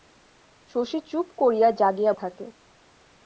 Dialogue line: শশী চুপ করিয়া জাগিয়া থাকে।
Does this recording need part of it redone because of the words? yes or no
no